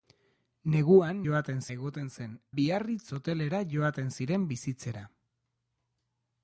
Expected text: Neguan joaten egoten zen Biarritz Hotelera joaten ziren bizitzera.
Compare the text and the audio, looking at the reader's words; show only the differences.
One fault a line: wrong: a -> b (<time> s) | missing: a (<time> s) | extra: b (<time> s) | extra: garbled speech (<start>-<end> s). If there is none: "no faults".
no faults